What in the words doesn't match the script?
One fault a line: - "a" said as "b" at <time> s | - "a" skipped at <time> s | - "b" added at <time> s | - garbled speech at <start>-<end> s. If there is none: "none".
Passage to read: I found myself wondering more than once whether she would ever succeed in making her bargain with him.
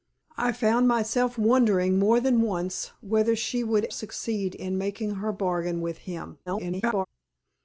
- "ever" skipped at 3.9 s
- garbled speech at 6.5-7.1 s